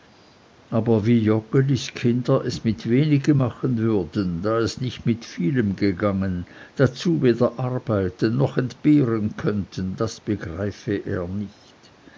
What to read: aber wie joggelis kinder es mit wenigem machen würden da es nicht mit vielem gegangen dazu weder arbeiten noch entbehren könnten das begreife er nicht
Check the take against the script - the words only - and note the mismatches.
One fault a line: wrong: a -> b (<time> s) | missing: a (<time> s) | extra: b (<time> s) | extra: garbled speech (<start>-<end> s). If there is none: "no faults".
no faults